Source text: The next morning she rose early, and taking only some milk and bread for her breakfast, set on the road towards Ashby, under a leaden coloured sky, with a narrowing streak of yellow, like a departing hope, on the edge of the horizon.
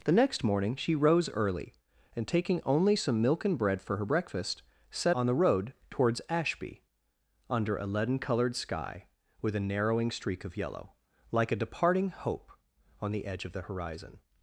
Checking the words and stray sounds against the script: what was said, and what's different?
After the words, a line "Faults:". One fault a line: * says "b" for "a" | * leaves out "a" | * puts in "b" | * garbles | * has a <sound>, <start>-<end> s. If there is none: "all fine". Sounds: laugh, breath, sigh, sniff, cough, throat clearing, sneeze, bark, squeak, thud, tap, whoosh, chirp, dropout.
The next morning she rose early, and taking only some milk and bread for her breakfast, set on the road towards Ashby, under a leaden coloured sky, with a narrowing streak of yellow, like a departing hope, on the edge of the horizon.
Faults:
all fine